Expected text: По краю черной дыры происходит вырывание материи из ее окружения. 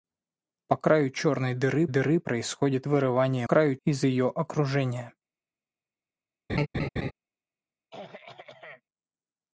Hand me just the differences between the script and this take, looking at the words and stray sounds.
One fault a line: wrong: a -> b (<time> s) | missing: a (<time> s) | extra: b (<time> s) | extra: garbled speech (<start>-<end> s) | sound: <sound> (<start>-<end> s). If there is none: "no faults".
extra: дыры (1.9 s)
wrong: материи -> краю (3.4 s)
sound: laugh (6.5-7.1 s)
sound: throat clearing (7.9-8.8 s)